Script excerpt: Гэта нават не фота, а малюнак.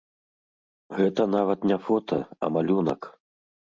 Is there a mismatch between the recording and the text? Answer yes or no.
no